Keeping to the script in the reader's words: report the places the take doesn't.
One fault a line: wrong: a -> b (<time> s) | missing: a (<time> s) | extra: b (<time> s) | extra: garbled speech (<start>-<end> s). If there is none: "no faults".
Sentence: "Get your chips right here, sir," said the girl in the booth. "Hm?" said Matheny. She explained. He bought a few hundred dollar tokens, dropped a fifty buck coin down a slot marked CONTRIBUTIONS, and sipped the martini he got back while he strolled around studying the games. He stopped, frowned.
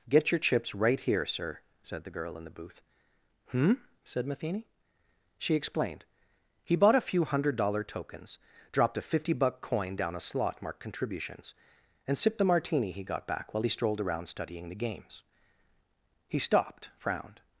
no faults